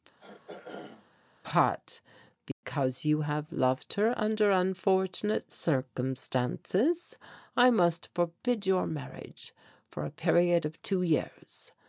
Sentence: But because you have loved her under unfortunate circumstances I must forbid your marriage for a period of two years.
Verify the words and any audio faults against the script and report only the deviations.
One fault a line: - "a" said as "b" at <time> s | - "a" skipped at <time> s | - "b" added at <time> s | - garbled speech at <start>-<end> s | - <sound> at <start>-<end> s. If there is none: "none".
- throat clearing at 0.2-1.1 s
- dropout at 2.5-2.6 s